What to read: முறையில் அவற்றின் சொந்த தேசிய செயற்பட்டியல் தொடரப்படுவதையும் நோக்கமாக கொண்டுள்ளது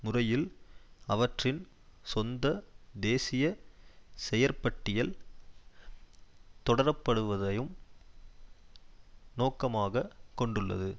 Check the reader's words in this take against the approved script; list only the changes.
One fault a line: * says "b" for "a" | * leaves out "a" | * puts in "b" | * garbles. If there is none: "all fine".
all fine